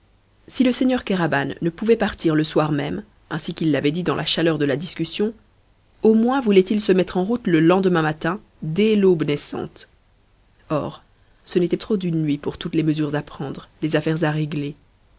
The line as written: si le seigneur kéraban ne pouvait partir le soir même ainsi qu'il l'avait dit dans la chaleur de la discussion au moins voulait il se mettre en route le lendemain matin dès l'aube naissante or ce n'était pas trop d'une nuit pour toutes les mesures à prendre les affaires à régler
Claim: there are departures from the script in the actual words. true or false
true